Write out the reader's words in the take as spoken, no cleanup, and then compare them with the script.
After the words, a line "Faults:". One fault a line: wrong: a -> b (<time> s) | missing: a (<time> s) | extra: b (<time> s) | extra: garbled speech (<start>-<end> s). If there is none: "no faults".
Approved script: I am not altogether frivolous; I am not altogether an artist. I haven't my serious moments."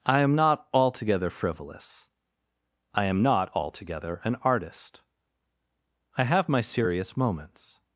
I am not altogether frivolous; I am not altogether an artist. I have my serious moments."
Faults:
wrong: haven't -> have (6.2 s)